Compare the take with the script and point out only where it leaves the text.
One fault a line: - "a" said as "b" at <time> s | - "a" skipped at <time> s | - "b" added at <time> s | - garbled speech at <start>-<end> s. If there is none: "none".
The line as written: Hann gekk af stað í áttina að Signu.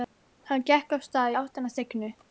none